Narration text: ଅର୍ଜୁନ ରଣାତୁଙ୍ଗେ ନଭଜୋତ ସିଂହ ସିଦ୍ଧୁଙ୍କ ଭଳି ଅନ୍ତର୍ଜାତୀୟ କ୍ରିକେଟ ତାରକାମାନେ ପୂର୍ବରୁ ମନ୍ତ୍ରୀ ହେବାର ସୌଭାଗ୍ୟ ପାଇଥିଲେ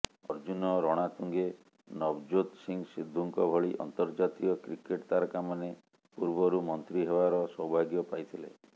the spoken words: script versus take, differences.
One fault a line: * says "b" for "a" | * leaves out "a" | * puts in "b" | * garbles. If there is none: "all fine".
all fine